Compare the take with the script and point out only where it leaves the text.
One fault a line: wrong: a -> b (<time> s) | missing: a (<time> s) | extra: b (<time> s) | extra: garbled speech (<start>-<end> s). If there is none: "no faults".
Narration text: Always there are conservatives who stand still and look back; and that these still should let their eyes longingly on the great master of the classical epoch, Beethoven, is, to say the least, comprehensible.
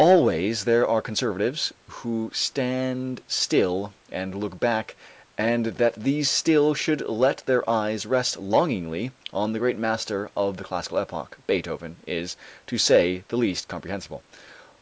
extra: rest (8.1 s)